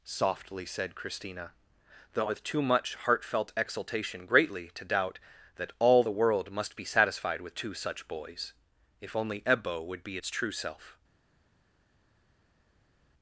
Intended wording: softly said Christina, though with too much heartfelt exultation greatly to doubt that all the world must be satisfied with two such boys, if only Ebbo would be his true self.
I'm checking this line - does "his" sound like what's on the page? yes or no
no